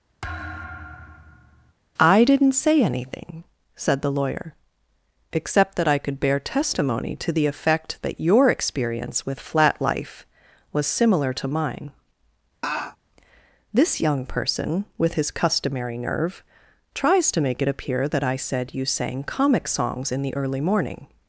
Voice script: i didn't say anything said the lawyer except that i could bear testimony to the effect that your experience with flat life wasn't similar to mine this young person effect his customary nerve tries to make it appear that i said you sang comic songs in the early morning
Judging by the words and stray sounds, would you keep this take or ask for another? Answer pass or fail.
fail